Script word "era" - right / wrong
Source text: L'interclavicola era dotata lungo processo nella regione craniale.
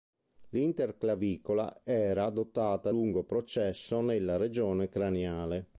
right